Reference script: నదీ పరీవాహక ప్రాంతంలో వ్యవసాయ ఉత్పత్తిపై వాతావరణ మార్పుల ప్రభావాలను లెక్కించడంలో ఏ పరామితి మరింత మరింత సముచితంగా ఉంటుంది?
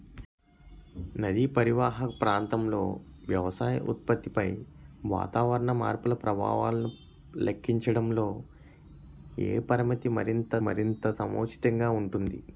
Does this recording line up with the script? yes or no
yes